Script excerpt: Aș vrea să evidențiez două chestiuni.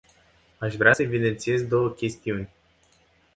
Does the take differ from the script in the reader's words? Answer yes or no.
no